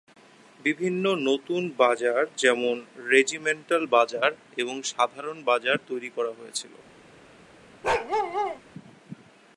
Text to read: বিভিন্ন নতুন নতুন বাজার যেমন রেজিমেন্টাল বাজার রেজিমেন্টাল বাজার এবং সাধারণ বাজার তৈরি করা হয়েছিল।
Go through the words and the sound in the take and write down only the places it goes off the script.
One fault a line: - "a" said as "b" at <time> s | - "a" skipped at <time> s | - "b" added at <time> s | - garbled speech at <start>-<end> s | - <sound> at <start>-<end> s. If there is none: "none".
- "নতুন" skipped at 1.6 s
- "রেজিমেন্টাল বাজার" skipped at 4.3 s
- bark at 7.8-8.6 s